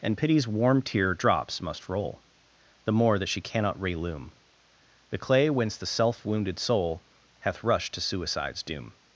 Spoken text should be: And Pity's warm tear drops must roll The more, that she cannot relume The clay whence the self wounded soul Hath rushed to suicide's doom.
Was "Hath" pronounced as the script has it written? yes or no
yes